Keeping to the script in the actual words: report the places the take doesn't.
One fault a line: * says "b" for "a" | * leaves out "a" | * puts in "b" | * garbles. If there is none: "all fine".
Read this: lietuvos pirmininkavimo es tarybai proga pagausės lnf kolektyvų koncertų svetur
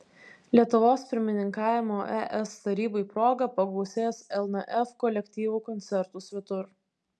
all fine